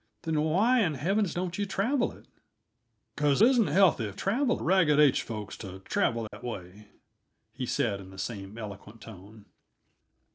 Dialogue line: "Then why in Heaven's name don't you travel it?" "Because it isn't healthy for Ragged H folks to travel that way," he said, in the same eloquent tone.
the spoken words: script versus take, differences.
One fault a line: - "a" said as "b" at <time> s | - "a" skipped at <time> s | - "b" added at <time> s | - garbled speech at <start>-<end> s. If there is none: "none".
- "name" skipped at 1.4 s
- "it" skipped at 3.4 s
- "for" said as "travel" at 4.1 s